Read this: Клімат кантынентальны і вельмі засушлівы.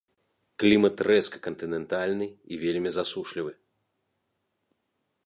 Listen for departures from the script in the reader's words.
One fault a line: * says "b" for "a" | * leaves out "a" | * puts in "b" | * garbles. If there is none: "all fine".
* puts in "рэзка"